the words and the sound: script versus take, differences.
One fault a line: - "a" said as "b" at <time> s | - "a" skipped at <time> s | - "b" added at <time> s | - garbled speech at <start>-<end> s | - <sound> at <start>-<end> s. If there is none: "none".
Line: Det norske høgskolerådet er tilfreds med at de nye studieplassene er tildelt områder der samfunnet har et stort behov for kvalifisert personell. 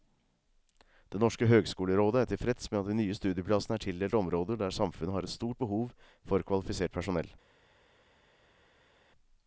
none